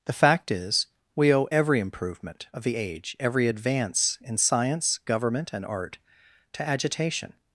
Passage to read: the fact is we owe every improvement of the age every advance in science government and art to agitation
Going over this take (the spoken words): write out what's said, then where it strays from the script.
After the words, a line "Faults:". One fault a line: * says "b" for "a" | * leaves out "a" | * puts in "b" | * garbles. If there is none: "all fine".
the fact is we owe every improvement of the age every advance in science government and art to agitation
Faults:
all fine